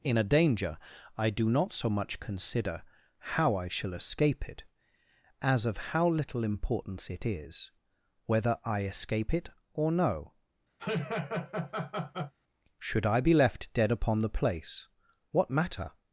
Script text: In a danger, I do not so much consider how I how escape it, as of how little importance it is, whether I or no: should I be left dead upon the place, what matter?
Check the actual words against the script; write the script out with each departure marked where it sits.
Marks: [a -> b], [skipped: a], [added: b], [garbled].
In a danger, I do not so much consider how I [how -> shall] escape it, as of how little importance it is, whether I [added: escape it] or no: should I be left dead upon the place, what matter?